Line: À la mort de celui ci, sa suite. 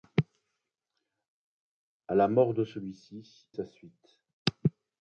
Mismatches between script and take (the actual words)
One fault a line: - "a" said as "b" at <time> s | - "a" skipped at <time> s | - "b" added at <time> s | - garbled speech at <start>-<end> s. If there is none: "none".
none